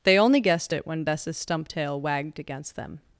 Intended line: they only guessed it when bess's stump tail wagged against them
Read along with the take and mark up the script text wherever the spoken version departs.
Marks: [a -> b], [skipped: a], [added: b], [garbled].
they only guessed it when bess's stump tail wagged against them